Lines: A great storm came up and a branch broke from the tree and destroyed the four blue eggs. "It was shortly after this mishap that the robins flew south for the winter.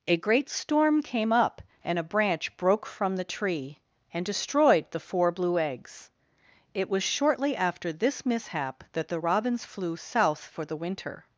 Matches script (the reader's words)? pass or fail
pass